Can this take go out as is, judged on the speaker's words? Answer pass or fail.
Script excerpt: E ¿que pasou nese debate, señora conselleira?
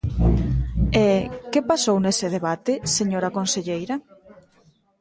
pass